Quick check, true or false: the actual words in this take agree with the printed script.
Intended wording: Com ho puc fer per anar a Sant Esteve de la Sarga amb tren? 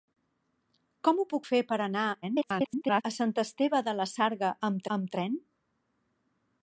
false